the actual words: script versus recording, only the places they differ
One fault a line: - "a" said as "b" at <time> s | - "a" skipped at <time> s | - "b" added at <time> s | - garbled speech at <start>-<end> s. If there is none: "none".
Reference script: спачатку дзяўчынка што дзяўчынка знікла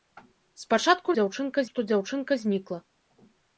none